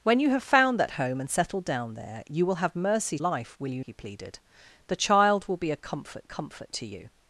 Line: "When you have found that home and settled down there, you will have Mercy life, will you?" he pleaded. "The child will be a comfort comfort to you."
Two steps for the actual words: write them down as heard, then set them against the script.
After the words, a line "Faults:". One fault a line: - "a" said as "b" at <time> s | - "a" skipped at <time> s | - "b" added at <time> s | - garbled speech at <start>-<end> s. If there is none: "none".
"When you have found that home and settled down there, you will have Mercy life, will you?" he pleaded. "The child will be a comfort comfort to you."
Faults:
none